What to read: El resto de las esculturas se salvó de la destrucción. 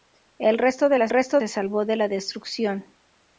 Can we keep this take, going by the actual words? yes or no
no